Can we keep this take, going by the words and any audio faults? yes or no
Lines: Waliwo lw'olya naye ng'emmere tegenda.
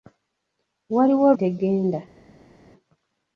no